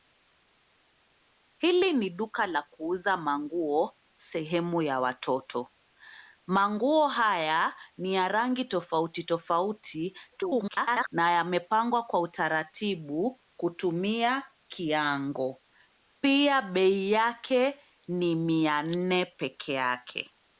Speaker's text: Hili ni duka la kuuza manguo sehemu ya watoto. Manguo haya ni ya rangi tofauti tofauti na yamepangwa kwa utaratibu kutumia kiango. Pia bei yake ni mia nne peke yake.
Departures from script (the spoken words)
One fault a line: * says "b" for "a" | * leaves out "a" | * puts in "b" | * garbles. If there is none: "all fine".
* garbles